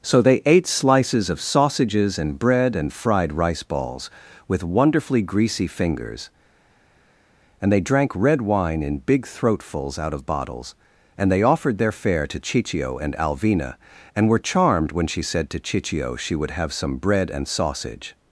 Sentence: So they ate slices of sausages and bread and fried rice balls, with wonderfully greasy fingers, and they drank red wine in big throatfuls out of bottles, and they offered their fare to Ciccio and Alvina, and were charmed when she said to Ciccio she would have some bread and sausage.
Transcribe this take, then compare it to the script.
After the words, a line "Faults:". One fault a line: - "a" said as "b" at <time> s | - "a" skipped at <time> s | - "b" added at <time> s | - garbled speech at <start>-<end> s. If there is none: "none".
So they ate slices of sausages and bread and fried rice balls, with wonderfully greasy fingers, and they drank red wine in big throatfuls out of bottles, and they offered their fare to Ciccio and Alvina, and were charmed when she said to Ciccio she would have some bread and sausage.
Faults:
none